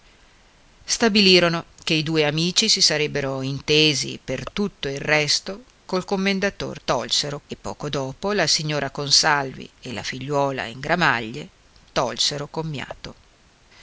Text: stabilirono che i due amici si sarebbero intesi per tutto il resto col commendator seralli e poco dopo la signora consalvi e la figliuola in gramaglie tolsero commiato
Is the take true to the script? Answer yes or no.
no